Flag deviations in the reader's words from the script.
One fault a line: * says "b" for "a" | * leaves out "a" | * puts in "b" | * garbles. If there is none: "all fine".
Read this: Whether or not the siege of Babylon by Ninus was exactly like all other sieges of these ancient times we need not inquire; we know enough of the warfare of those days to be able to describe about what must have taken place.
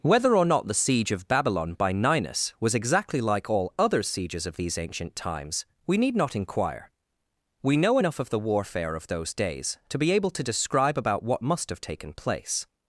all fine